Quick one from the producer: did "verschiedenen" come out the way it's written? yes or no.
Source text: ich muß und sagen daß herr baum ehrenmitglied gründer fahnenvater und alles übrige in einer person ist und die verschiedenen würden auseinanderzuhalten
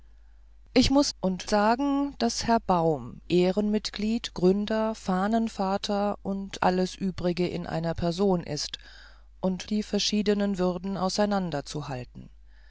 yes